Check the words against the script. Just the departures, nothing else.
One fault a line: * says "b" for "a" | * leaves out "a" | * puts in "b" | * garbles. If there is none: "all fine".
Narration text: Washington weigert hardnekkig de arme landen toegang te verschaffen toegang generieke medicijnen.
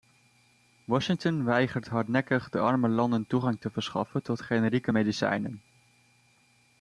* says "tot" for "toegang"